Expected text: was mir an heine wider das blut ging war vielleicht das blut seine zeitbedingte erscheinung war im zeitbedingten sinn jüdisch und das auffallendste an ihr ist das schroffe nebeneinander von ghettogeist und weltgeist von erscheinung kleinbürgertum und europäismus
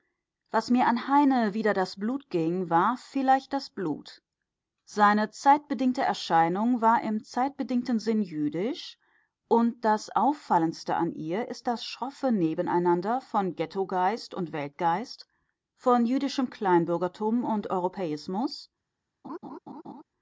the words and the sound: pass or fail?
fail